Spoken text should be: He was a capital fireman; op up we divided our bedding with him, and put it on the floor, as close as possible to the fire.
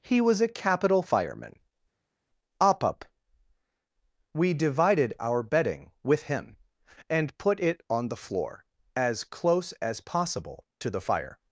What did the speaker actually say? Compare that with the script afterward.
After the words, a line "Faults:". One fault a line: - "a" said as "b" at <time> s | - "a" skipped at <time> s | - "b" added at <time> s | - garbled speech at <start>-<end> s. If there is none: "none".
He was a capital fireman; op up we divided our bedding with him, and put it on the floor, as close as possible to the fire.
Faults:
none